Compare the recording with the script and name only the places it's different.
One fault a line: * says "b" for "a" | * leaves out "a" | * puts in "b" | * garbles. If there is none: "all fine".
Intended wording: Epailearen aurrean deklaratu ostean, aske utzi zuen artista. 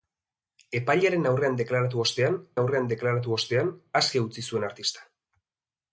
* puts in "aurrean deklaratu ostean"